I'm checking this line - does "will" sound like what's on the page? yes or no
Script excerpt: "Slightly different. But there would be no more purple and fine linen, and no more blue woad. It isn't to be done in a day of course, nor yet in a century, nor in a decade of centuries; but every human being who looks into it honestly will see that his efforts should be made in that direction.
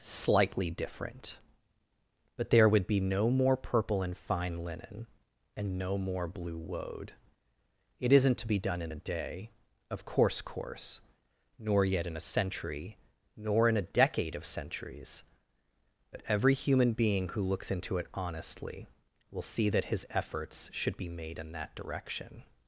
yes